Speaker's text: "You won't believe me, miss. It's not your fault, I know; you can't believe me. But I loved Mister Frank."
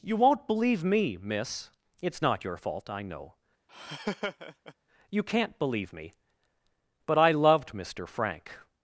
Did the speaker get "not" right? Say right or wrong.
right